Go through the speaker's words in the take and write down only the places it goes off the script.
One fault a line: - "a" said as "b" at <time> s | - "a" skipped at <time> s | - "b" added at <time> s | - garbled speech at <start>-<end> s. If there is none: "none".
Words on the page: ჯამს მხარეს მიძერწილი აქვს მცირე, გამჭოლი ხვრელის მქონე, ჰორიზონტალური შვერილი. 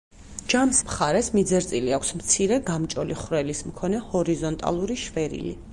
none